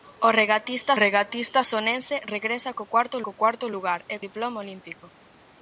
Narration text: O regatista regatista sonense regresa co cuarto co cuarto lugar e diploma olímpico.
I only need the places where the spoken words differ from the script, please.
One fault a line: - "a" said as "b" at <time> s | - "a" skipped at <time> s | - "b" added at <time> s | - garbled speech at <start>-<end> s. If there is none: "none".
none